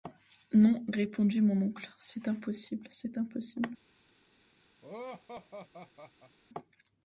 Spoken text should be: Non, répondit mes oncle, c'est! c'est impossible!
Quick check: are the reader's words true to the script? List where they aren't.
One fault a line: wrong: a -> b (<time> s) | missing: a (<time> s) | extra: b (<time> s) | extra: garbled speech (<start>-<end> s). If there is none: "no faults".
wrong: mes -> mon (1.4 s)
extra: impossible (2.3 s)